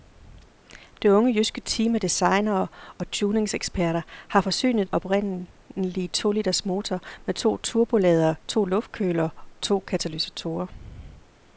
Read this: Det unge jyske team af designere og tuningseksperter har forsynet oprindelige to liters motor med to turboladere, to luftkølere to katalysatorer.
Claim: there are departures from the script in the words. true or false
false